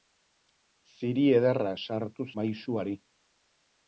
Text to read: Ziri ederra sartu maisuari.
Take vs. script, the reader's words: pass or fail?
pass